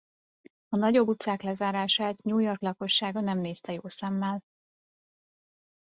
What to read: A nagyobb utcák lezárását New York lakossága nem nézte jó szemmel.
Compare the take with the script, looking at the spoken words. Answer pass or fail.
pass